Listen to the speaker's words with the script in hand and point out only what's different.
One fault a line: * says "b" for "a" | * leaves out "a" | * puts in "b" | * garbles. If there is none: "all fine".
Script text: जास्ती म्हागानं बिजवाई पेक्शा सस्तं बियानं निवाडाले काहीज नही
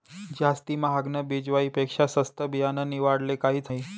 all fine